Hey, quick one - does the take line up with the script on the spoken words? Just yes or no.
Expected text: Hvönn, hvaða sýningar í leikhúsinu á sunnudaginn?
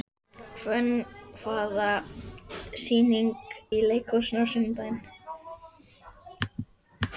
yes